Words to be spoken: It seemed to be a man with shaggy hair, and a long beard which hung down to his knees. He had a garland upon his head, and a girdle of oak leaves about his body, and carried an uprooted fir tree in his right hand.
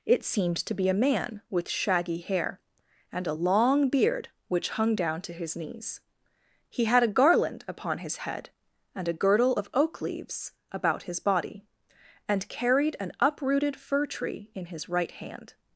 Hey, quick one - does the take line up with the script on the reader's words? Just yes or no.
yes